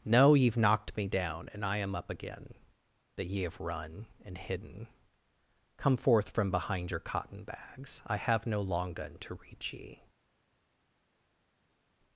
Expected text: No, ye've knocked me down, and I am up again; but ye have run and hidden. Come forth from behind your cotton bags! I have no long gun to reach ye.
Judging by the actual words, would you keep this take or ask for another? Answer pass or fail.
fail